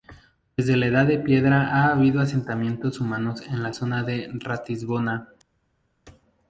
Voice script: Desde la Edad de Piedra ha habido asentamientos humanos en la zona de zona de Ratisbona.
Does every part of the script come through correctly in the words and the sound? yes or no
no